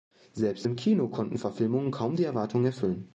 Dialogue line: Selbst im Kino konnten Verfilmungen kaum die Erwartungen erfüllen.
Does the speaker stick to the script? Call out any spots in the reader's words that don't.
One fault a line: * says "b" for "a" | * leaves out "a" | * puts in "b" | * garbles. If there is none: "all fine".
all fine